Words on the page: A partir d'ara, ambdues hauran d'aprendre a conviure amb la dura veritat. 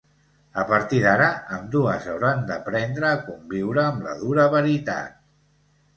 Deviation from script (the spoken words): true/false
false